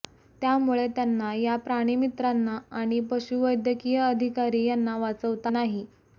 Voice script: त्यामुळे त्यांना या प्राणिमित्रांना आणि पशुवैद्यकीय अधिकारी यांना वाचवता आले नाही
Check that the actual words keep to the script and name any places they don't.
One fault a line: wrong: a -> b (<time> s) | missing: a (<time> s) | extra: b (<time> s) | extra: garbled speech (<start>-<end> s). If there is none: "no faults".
missing: आले (5.5 s)